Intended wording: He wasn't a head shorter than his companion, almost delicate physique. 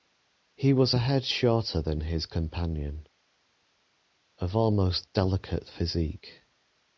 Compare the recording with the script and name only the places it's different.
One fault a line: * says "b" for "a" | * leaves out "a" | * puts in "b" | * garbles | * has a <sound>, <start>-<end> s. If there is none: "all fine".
* says "was" for "wasn't"
* puts in "of"